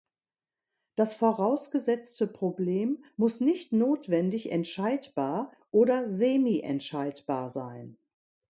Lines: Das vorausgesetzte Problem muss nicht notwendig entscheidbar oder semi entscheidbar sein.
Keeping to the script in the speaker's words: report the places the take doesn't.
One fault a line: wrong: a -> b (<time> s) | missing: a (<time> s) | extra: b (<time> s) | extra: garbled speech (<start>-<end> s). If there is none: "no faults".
no faults